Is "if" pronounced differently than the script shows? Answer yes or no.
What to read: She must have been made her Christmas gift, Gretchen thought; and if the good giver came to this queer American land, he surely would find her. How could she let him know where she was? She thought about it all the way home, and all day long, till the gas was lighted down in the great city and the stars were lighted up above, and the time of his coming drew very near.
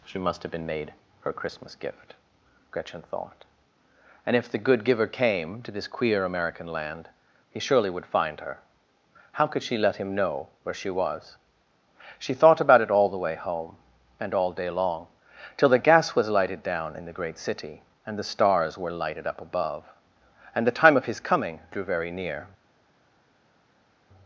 no